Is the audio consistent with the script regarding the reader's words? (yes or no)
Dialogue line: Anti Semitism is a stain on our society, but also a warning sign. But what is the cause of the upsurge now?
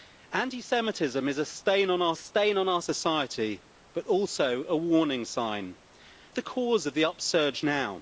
no